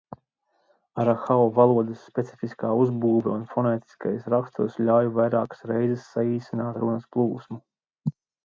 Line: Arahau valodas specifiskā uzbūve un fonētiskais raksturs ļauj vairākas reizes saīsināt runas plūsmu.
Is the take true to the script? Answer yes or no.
yes